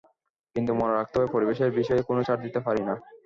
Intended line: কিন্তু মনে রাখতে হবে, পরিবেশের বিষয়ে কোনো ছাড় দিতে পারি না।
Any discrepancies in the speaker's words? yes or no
no